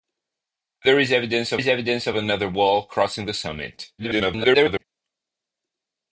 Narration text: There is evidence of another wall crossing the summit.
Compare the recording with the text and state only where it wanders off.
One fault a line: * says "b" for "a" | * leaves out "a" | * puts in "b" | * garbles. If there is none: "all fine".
* puts in "is evidence of"
* garbles